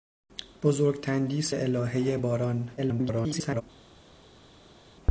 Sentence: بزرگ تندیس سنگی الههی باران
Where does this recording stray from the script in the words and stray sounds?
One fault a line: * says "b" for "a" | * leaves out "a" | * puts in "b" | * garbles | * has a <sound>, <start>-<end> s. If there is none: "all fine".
* leaves out "سنگی"
* garbles